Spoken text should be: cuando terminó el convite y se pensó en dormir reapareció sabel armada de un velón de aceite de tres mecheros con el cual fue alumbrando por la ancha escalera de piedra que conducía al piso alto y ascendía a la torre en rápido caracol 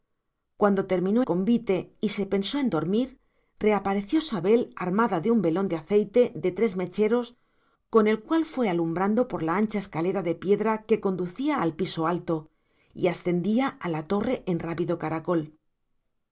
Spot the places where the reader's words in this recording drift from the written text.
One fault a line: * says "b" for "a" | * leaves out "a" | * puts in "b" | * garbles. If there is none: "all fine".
* leaves out "el"